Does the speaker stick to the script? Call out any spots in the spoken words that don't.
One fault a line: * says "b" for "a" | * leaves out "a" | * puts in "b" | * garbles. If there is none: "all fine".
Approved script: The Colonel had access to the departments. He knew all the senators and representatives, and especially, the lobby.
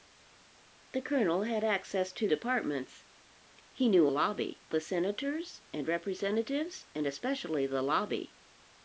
* leaves out "the"
* says "lobby" for "all"